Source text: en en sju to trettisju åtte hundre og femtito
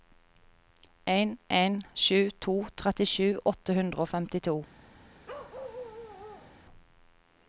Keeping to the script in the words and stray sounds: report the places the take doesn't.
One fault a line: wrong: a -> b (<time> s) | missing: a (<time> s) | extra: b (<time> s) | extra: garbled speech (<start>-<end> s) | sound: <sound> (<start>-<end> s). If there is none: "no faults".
sound: bark (5.3-6.6 s)